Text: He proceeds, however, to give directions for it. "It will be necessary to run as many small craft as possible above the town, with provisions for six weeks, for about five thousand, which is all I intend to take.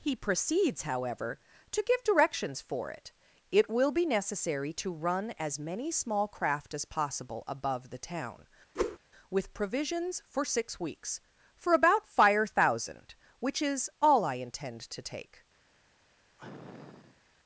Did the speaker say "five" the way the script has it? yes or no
no